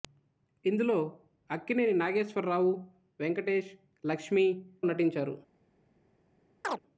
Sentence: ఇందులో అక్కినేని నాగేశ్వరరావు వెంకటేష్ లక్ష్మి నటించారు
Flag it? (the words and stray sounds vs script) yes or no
yes